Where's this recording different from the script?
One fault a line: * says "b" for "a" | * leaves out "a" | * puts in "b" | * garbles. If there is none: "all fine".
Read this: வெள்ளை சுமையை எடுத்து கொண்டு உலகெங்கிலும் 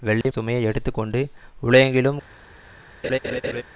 all fine